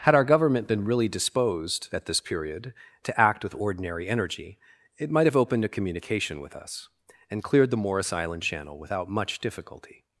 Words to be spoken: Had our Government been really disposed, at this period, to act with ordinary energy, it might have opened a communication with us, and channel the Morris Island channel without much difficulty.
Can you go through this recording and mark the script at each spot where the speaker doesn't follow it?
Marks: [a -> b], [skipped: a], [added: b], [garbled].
Had our Government been really disposed, at this period, to act with ordinary energy, it might have opened a communication with us, and [channel -> cleared] the Morris Island channel without much difficulty.